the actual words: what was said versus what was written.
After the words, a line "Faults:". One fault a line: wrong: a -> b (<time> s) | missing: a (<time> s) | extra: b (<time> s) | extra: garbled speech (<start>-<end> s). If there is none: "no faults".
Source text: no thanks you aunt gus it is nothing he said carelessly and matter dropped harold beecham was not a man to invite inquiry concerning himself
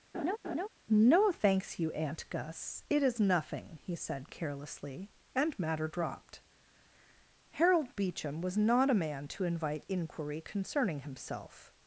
no thanks you aunt gus it is nothing he said carelessly and matter dropped harold beecham was not a man to invite inquiry concerning himself
Faults:
no faults